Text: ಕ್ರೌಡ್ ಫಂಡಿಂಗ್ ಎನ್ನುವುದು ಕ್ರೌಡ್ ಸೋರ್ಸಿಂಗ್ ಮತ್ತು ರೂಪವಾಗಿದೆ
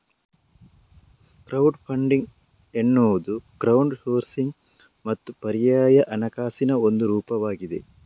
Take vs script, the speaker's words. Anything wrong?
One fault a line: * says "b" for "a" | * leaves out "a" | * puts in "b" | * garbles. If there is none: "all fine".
* puts in "ಪರ್ಯಾಯ ಹಣಕಾಸಿನ ಒಂದು"